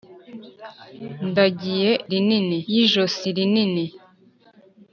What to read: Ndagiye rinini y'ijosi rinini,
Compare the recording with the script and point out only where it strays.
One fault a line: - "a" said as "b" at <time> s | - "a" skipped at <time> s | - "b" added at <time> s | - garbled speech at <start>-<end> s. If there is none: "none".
none